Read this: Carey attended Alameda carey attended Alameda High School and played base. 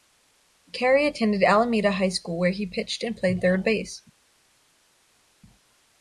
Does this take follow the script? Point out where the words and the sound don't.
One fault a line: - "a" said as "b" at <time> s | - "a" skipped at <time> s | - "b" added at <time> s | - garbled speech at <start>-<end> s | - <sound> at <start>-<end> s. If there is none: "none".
- "carey attended Alameda High School" said as "High School where he pitched" at 1.9 s
- "third" added at 3.4 s